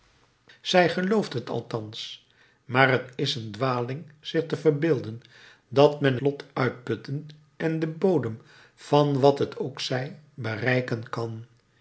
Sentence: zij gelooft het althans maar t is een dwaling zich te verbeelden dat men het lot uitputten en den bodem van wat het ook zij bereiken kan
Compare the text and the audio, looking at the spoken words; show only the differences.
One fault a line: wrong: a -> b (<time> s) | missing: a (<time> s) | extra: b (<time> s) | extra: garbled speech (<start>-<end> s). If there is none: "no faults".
missing: het (6.2 s)